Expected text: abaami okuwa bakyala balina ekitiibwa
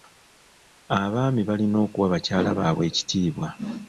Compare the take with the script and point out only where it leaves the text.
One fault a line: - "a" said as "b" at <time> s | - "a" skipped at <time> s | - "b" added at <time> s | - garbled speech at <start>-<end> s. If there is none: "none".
- "balina" added at 1.5 s
- "balina" said as "baabwe" at 2.6 s